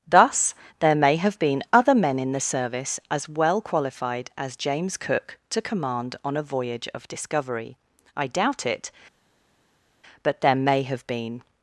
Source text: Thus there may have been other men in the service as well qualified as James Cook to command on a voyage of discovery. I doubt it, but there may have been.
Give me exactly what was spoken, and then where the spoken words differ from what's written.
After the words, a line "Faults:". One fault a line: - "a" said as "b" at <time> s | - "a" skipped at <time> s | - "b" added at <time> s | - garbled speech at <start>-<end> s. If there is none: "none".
Thus there may have been other men in the service as well qualified as James Cook to command on a voyage of discovery. I doubt it, but there may have been.
Faults:
none